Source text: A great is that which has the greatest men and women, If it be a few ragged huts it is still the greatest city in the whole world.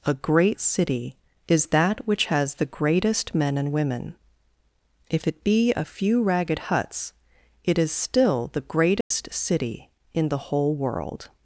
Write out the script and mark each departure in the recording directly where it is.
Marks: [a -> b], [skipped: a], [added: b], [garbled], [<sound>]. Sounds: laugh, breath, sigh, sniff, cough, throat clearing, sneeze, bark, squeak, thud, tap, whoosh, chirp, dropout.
A great [added: city] is that which has the greatest men and women, If it be a few ragged huts it is still the greatest [dropout] city in the whole world.